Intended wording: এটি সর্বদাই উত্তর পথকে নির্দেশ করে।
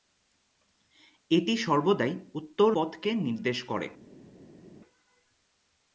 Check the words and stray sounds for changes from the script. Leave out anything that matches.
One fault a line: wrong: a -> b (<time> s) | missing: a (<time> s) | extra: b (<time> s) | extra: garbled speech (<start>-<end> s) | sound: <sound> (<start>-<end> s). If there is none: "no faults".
no faults